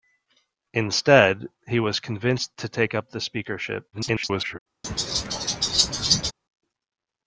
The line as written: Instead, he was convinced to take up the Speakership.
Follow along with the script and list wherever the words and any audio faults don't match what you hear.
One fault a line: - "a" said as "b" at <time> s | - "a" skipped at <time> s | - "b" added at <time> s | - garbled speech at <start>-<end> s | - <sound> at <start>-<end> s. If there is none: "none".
- garbled speech at 3.9-4.6 s
- laugh at 4.8-6.3 s